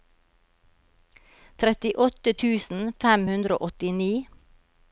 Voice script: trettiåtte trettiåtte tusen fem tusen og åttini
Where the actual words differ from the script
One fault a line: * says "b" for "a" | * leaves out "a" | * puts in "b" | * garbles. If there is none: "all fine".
* leaves out "trettiåtte"
* says "hundre" for "tusen"